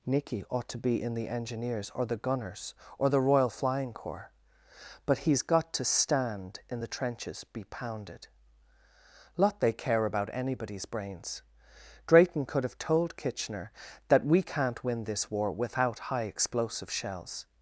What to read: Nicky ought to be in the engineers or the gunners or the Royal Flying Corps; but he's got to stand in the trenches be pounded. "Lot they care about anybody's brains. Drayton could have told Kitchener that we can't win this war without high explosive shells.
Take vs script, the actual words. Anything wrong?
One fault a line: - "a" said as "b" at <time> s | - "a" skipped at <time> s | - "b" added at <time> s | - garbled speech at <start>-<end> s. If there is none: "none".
none